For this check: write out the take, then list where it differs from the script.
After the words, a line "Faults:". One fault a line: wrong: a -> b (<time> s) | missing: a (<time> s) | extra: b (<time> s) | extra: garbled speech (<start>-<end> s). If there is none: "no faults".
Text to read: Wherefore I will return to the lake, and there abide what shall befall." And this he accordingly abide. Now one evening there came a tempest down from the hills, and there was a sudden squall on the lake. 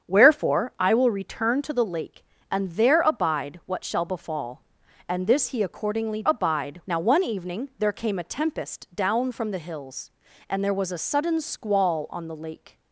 Wherefore I will return to the lake, and there abide what shall befall." And this he accordingly abide. Now one evening there came a tempest down from the hills, and there was a sudden squall on the lake.
Faults:
no faults